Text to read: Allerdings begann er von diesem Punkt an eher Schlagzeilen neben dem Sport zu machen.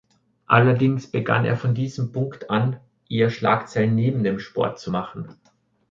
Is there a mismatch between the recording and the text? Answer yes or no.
no